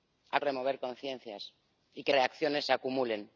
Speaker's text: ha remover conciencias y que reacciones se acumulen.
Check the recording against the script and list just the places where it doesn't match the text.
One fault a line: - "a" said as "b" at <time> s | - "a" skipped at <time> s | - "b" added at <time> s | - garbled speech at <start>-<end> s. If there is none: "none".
none